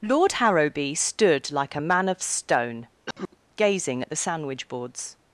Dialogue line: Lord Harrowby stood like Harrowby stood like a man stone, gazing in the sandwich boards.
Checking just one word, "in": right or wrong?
wrong